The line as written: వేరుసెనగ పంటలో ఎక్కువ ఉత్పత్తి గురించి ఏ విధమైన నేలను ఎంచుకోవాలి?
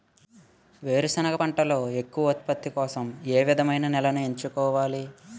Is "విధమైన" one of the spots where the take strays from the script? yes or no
no